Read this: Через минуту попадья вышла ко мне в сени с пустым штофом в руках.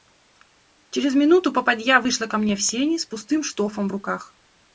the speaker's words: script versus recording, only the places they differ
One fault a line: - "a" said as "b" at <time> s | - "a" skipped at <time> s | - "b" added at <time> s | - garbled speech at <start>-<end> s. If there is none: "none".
none